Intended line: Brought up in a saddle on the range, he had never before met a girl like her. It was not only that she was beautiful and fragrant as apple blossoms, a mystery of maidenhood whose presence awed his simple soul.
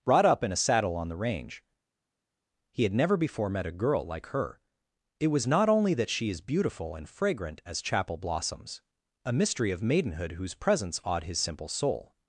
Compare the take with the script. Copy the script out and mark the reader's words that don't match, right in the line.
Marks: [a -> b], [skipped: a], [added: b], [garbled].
Brought up in a saddle on the range, he had never before met a girl like her. It was not only that she [was -> is] beautiful and fragrant as [apple -> chapel] blossoms, a mystery of maidenhood whose presence awed his simple soul.